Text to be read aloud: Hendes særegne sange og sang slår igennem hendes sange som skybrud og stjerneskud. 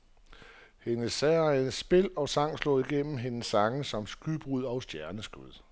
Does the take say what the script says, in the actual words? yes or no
no